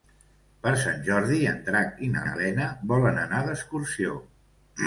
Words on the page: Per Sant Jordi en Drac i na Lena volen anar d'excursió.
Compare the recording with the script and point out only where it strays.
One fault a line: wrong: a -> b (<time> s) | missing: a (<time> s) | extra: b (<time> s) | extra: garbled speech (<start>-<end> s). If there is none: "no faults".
extra: na (2.3 s)